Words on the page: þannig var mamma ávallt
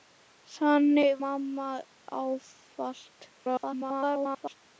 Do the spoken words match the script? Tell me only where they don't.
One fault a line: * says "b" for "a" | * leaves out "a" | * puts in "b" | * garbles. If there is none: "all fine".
* leaves out "var"
* garbles